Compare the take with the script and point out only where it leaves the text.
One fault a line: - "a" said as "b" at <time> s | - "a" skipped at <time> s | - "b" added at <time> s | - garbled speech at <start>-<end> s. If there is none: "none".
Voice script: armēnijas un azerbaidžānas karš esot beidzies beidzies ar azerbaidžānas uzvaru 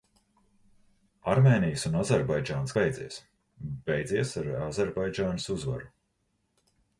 - "karš esot" skipped at 2.7 s